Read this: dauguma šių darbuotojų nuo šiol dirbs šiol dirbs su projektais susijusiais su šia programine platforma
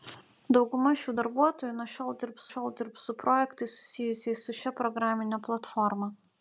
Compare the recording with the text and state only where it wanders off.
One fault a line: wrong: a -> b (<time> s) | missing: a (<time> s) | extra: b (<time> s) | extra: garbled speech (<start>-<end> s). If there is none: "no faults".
no faults